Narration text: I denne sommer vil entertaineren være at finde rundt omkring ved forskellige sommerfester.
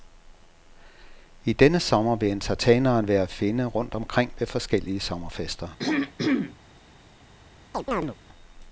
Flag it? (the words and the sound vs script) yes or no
yes